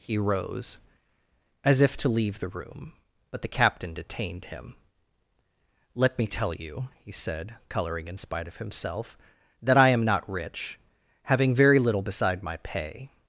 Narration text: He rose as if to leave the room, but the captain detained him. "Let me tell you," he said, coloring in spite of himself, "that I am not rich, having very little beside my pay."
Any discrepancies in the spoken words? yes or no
no